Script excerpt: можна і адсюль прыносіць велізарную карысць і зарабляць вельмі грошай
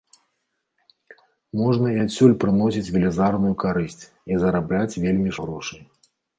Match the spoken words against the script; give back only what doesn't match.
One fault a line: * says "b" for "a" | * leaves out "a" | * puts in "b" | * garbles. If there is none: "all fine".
all fine